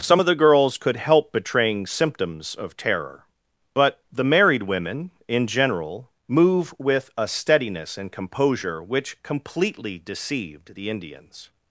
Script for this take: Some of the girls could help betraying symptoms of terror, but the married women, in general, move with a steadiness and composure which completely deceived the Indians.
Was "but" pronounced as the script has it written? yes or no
yes